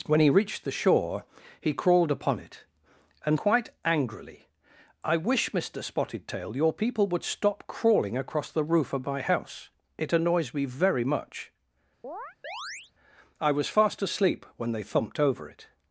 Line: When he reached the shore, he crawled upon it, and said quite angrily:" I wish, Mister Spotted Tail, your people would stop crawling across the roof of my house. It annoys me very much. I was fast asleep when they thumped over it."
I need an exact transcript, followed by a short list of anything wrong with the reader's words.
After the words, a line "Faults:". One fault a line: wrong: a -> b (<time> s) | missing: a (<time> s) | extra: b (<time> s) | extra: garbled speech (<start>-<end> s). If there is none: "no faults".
When he reached the shore, he crawled upon it, and quite angrily:" I wish, Mister Spotted Tail, your people would stop crawling across the roof of my house. It annoys me very much. I was fast asleep when they thumped over it."
Faults:
missing: said (3.4 s)